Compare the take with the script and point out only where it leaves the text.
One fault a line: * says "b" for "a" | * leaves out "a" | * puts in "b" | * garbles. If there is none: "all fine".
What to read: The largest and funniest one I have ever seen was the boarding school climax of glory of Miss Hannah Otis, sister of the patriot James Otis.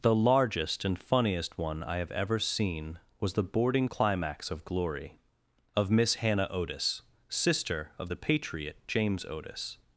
* leaves out "school"